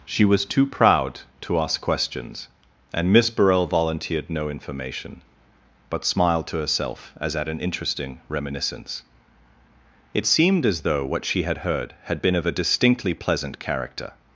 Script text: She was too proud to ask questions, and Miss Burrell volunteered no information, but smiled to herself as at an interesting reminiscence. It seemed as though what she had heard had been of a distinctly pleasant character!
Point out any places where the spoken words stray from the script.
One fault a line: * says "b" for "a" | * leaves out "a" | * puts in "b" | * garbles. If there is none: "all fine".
all fine